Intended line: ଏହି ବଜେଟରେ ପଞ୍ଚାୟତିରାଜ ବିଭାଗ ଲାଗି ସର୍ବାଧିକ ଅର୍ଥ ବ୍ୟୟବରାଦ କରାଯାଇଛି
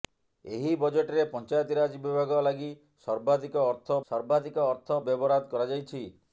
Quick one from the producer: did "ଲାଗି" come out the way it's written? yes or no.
yes